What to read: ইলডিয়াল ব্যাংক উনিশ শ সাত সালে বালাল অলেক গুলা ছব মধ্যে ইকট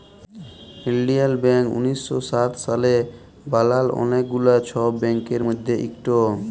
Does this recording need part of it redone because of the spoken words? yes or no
yes